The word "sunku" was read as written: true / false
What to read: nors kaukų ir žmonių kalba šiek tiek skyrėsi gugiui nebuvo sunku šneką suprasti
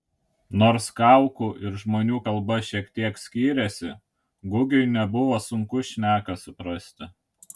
true